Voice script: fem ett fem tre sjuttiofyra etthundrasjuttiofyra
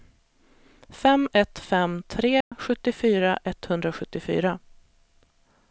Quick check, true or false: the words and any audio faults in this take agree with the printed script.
false